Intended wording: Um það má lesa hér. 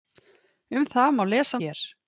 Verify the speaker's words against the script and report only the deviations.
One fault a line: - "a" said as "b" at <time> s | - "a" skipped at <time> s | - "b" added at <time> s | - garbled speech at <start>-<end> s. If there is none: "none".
none